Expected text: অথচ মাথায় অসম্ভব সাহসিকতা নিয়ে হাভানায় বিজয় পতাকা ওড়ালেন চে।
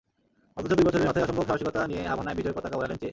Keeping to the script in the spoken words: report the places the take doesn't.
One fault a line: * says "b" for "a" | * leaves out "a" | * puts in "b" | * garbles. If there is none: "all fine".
* puts in "দুই বছরের"